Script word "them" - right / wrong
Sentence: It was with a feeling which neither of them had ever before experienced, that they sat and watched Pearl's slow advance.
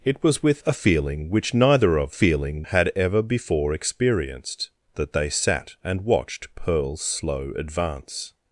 wrong